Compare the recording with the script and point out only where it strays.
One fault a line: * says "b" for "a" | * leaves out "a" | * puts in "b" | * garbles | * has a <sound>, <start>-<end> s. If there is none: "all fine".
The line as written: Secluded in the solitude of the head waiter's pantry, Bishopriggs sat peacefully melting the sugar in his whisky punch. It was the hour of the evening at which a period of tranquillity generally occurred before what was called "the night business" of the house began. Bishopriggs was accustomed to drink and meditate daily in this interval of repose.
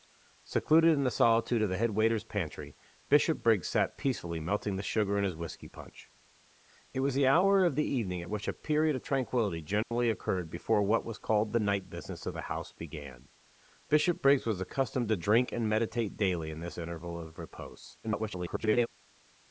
* has a dropout, 9.8-9.9 s
* garbles